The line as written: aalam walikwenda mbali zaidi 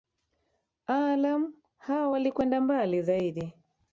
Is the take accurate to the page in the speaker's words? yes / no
no